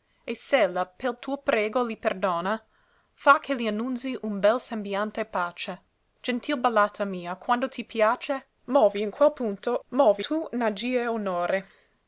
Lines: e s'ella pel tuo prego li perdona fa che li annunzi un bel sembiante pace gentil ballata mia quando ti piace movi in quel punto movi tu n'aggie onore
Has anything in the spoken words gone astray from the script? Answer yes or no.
no